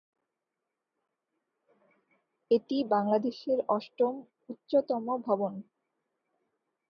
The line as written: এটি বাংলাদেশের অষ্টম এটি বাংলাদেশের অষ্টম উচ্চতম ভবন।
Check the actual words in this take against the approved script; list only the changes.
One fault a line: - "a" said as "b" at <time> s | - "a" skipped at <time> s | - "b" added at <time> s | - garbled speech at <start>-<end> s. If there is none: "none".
- "এটি বাংলাদেশের অষ্টম" skipped at 4.1 s